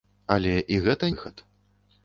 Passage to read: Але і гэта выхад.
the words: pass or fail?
pass